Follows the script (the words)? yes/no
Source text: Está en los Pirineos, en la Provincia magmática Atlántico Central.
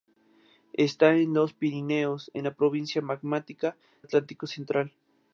yes